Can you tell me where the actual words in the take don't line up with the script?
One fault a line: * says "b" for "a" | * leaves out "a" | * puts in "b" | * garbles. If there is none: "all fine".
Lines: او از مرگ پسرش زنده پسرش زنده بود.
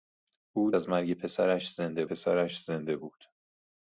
all fine